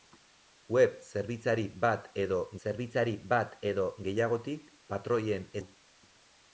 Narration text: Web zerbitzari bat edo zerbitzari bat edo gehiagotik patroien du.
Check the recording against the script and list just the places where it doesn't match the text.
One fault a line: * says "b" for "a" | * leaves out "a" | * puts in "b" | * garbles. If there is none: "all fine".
all fine